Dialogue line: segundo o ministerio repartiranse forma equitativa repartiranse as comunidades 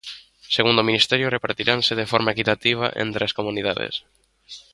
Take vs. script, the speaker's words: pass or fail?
fail